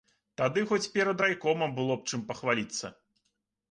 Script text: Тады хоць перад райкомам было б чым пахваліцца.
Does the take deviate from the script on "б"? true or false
false